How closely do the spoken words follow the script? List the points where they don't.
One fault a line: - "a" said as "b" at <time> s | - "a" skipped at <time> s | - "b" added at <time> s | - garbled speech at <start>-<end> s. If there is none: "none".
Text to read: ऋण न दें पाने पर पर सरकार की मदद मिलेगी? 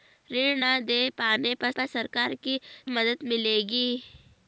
none